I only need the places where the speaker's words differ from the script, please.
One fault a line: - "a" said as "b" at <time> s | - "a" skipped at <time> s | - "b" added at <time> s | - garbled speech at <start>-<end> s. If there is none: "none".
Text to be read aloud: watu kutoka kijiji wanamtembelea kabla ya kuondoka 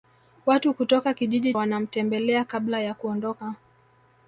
none